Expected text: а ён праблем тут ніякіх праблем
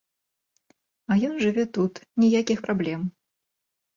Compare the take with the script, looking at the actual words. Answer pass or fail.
fail